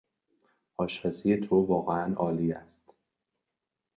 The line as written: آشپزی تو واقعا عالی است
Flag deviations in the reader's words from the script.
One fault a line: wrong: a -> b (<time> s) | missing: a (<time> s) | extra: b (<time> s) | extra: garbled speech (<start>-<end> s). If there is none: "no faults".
no faults